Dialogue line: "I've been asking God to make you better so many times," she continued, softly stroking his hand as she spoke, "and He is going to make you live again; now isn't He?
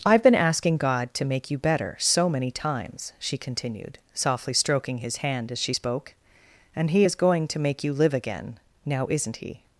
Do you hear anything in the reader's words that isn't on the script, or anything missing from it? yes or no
no